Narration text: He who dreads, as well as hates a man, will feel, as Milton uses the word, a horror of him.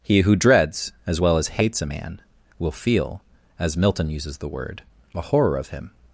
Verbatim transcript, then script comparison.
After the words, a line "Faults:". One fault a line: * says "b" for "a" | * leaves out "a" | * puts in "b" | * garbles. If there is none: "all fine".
He who dreads, as well as hates a man, will feel, as Milton uses the word, a horror of him.
Faults:
all fine